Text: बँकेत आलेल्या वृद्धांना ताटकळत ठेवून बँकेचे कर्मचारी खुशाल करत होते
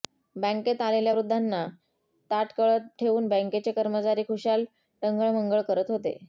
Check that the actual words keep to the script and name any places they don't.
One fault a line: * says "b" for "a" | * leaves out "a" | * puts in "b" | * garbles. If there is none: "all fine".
* puts in "टंगळमंगळ"